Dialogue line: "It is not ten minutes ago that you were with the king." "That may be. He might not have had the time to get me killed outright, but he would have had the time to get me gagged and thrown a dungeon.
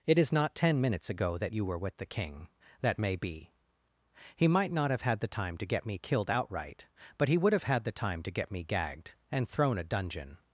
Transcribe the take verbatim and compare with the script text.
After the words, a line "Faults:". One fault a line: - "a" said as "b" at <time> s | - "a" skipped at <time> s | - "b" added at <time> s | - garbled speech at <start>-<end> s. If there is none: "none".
"It is not ten minutes ago that you were with the king." "That may be. He might not have had the time to get me killed outright, but he would have had the time to get me gagged and thrown a dungeon.
Faults:
none